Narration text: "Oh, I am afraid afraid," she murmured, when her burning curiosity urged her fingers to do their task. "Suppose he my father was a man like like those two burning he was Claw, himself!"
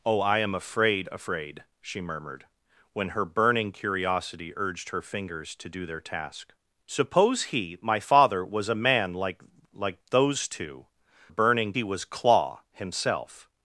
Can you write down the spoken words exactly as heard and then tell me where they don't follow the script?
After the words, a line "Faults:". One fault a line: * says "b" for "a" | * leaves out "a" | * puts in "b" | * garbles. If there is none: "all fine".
"Oh, I am afraid afraid," she murmured, when her burning curiosity urged her fingers to do their task. "Suppose he my father was a man like like those two burning he was Claw, himself!"
Faults:
all fine